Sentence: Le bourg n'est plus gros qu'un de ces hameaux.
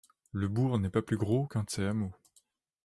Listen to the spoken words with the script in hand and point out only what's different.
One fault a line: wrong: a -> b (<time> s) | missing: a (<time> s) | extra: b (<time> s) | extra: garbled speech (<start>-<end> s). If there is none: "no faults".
extra: pas (0.9 s)